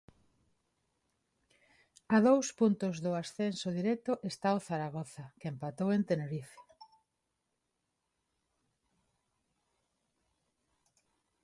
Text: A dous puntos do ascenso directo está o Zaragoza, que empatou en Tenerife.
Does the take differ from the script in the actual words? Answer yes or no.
no